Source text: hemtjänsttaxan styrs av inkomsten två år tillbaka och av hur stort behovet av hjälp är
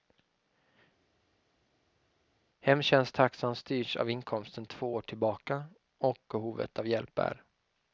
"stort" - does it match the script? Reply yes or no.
no